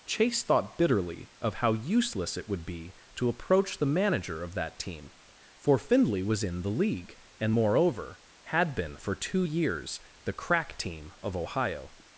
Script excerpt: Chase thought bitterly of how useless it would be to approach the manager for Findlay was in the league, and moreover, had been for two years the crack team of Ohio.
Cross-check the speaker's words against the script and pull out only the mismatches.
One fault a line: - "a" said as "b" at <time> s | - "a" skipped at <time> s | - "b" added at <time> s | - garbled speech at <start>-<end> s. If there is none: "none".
- "of that team" added at 4.4 s